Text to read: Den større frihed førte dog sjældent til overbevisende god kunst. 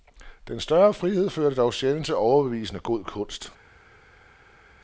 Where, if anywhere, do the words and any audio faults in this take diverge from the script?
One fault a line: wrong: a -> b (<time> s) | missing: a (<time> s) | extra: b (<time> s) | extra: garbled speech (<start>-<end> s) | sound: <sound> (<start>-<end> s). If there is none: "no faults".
no faults